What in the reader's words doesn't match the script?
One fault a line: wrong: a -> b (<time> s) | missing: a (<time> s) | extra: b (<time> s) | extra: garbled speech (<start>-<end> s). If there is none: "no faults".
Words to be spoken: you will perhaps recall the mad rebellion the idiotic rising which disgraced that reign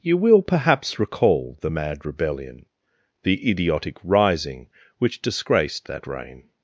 no faults